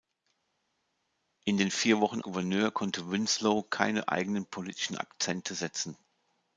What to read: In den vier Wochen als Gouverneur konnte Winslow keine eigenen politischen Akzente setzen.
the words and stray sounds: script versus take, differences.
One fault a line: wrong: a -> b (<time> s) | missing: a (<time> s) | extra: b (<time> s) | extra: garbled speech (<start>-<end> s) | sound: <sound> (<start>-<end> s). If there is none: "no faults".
missing: als (2.2 s)